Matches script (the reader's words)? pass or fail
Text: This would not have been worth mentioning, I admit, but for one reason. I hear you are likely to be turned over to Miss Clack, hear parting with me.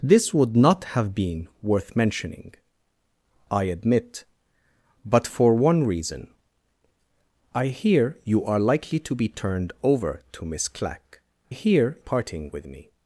pass